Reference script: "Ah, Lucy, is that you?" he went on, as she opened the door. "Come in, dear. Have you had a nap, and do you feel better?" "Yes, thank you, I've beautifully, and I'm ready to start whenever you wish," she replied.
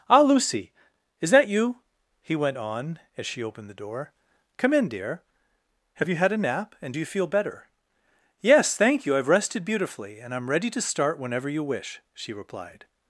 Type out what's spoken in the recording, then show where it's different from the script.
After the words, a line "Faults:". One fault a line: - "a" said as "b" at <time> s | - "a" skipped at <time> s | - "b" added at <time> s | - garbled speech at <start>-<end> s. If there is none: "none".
"Ah, Lucy, is that you?" he went on, as she opened the door. "Come in, dear. Have you had a nap, and do you feel better?" "Yes, thank you, I've rested beautifully, and I'm ready to start whenever you wish," she replied.
Faults:
- "rested" added at 9.3 s